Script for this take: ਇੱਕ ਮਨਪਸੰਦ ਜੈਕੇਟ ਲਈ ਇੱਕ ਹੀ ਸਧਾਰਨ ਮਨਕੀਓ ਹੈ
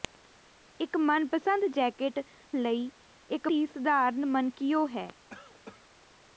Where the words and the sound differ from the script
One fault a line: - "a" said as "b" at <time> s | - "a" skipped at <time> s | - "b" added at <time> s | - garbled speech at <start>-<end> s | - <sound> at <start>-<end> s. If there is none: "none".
- cough at 5.3-5.9 s